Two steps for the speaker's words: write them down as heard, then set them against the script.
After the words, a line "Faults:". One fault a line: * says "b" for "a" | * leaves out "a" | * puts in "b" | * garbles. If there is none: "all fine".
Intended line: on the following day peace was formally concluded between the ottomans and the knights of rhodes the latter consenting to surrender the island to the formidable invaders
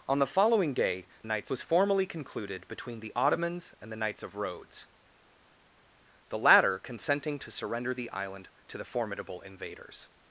on the following day knights was formally concluded between the ottomans and the knights of rhodes the latter consenting to surrender the island to the formidable invaders
Faults:
* says "knights" for "peace"